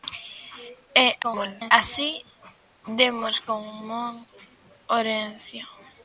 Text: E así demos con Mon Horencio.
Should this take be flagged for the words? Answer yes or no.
yes